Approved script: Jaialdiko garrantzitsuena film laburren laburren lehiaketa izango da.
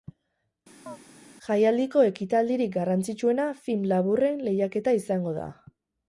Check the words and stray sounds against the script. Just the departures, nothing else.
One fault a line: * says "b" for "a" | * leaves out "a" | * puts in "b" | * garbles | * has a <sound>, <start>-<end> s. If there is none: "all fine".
* has a chirp, 0.9-1.0 s
* puts in "ekitaldirik"
* leaves out "laburren"